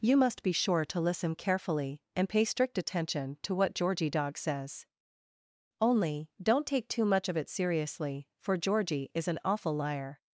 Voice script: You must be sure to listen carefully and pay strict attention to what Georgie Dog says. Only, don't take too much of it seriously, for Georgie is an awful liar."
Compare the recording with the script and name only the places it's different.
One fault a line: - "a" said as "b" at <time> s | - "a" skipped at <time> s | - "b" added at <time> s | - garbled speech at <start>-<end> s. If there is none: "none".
none